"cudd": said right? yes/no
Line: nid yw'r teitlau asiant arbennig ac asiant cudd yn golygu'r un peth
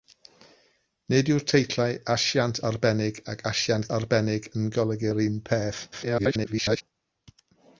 no